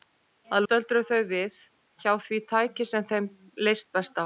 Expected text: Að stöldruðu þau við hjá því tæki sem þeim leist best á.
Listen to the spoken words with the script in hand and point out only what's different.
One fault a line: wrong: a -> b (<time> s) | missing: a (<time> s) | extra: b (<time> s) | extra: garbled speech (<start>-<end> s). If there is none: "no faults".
no faults